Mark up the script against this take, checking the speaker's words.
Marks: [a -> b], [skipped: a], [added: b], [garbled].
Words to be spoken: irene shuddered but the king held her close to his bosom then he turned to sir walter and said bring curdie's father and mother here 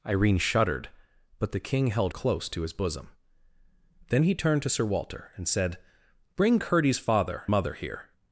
irene shuddered but the king held [skipped: her] close to his bosom then he turned to sir walter and said bring curdie's father [skipped: and] mother here